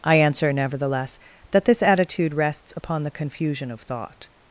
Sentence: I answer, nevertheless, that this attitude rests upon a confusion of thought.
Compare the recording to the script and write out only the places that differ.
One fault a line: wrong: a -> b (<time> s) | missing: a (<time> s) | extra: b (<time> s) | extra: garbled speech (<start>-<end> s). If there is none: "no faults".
wrong: a -> the (3.0 s)